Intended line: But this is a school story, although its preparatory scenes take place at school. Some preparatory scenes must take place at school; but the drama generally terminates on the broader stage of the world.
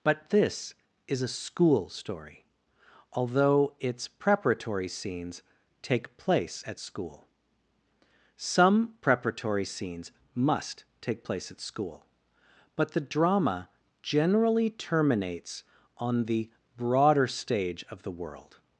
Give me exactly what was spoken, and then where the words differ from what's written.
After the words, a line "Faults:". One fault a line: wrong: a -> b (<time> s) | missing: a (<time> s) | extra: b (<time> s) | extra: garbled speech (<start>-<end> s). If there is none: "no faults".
But this is a school story, although its preparatory scenes take place at school. Some preparatory scenes must take place at school; but the drama generally terminates on the broader stage of the world.
Faults:
no faults